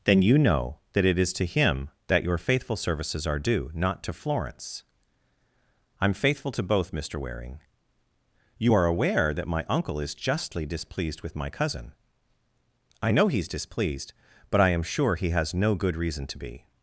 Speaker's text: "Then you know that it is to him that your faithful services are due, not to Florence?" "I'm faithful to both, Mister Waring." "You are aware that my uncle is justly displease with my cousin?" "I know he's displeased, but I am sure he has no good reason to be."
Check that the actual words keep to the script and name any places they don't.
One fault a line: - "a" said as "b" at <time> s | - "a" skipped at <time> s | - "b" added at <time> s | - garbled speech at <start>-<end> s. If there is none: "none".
- "displease" said as "displeased" at 10.6 s